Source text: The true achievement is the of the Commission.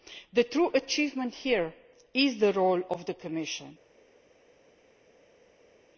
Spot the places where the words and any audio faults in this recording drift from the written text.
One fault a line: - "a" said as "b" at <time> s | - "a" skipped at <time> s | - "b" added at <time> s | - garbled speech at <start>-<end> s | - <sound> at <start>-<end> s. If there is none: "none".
- "here" added at 1.3 s
- "role" added at 2.5 s